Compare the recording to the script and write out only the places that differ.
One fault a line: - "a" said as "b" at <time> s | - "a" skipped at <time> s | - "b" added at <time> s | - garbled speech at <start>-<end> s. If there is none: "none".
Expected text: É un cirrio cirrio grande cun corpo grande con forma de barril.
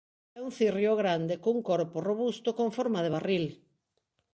- "cirrio" skipped at 0.9 s
- "grande" said as "robusto" at 2.1 s